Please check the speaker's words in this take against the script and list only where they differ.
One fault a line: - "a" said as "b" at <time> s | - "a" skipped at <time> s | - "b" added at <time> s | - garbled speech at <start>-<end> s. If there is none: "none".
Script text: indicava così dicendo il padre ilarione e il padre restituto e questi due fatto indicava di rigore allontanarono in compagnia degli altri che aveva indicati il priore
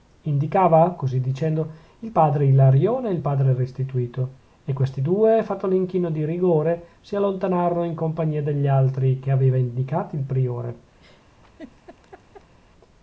- "indicava" said as "l'inchino" at 5.7 s
- "si" added at 7.0 s